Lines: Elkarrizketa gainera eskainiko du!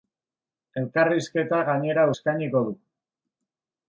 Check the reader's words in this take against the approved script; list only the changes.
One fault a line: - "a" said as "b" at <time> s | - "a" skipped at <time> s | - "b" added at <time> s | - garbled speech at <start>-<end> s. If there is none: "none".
none